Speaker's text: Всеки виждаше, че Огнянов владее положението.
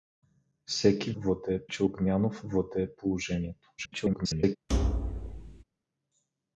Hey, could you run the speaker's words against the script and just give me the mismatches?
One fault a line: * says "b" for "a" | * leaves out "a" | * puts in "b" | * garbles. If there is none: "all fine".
* says "владее" for "виждаше"
* garbles